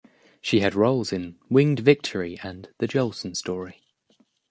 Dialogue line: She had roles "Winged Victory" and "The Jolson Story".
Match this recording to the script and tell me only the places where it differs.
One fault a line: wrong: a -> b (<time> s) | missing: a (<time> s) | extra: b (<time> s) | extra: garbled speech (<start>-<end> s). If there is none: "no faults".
extra: in (1.1 s)